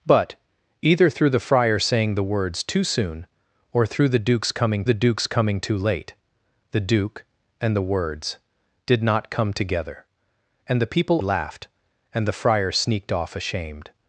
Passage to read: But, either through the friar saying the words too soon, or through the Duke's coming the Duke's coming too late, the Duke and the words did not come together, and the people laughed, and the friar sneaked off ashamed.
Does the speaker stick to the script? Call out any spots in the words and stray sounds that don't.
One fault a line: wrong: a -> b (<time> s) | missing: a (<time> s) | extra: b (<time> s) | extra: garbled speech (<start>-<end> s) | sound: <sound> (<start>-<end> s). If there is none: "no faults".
no faults